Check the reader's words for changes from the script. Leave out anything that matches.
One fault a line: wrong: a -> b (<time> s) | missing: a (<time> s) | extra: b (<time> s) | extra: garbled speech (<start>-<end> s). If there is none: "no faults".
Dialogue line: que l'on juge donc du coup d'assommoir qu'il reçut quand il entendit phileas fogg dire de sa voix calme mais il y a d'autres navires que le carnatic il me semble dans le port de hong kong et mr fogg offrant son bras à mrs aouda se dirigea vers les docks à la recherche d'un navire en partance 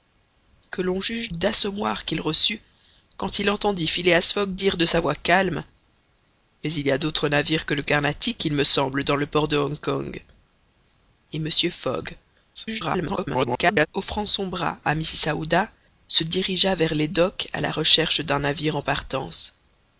missing: donc du coup (1.3 s)
extra: garbled speech (12.5-13.9 s)